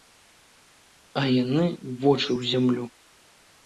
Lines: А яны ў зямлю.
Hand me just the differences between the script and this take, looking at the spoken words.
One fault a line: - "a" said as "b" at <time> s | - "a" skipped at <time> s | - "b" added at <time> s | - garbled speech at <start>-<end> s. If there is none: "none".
- "вочы" added at 2.0 s